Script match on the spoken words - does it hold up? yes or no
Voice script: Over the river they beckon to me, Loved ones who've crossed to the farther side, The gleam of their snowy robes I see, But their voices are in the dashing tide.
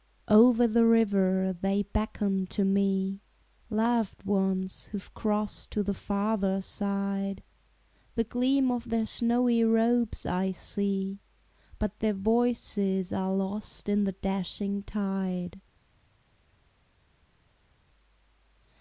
no